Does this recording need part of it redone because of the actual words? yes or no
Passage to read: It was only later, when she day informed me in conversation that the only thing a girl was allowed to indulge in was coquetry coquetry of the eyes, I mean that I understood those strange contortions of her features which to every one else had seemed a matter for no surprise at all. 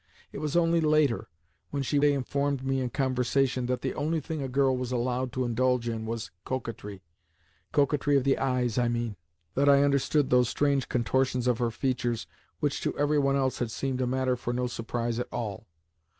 no